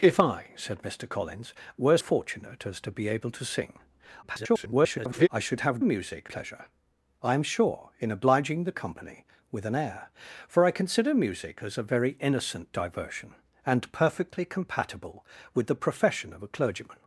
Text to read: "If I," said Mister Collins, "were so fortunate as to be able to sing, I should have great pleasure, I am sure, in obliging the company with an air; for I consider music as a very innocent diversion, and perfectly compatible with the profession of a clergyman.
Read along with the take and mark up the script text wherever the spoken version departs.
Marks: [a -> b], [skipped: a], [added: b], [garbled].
"If I," said Mister Collins, "were [skipped: so] fortunate as to be able to sing, [garbled] I should have [great -> music] pleasure, I am sure, in obliging the company with an air; for I consider music as a very innocent diversion, and perfectly compatible with the profession of a clergyman.